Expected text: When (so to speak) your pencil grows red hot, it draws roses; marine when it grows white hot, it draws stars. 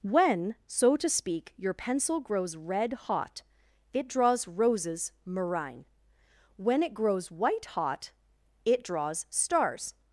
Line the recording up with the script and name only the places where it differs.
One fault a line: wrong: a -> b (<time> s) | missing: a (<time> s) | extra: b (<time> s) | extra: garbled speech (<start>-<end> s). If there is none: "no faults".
no faults